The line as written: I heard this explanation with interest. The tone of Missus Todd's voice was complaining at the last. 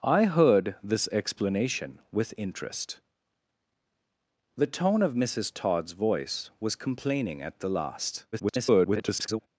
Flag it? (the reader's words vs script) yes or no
yes